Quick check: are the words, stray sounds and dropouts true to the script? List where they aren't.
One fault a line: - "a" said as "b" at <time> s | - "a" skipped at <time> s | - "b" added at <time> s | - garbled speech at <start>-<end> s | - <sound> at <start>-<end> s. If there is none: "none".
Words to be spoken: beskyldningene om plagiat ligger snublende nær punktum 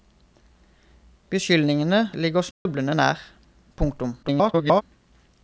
- "om plagiat" skipped at 2.0 s
- dropout at 2.5-2.7 s
- garbled speech at 4.2-4.8 s